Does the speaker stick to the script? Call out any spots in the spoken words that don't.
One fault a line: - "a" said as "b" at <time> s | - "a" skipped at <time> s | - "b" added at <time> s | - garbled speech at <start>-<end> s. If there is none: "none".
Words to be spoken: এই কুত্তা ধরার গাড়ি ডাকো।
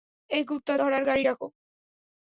none